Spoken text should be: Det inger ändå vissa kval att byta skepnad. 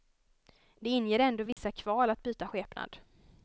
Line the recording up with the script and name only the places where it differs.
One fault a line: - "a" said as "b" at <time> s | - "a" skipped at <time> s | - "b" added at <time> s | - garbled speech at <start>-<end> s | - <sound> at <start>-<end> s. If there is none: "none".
- dropout at 1.5-1.6 s